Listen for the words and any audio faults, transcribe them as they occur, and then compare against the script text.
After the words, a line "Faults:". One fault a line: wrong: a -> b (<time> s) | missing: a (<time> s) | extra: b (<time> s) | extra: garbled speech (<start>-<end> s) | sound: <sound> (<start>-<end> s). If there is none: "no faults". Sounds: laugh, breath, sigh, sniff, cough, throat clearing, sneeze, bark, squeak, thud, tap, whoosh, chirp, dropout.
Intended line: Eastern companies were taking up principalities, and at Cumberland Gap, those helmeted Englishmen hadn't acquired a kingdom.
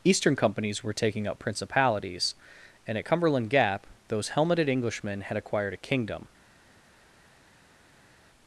Eastern companies were taking up principalities, and at Cumberland Gap, those helmeted Englishmen had acquired a kingdom.
Faults:
wrong: hadn't -> had (5.2 s)